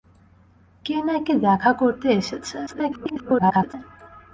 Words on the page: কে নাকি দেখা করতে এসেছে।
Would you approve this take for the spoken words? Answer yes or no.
no